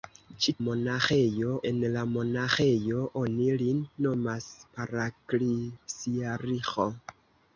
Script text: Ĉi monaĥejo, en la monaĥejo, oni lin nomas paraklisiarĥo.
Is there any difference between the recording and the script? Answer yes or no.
no